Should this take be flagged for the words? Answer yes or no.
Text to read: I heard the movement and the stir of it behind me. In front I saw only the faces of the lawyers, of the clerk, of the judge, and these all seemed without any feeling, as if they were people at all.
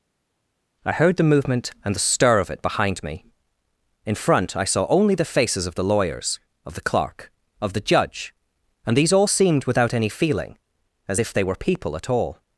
no